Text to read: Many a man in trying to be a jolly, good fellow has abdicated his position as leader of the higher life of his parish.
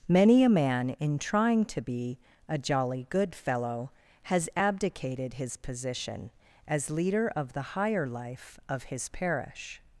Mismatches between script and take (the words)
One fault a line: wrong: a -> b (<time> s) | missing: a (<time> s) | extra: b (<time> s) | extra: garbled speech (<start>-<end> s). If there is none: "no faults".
no faults